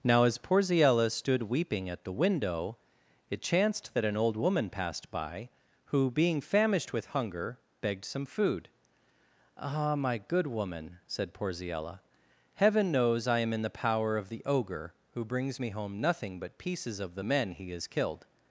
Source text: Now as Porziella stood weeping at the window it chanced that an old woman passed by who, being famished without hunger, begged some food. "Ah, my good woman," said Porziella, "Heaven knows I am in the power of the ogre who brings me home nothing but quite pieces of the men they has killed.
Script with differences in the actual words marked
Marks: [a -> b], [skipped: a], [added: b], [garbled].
Now as Porziella stood weeping at the window it chanced that an old woman passed by who, being famished [without -> with] hunger, begged some food. "Ah, my good woman," said Porziella, "Heaven knows I am in the power of the ogre who brings me home nothing but [skipped: quite] pieces of the men [they -> he] has killed.